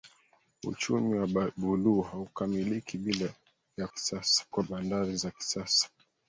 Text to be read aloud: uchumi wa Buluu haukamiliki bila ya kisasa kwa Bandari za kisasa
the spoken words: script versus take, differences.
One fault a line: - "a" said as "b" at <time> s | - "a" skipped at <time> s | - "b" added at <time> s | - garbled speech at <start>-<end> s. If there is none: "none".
none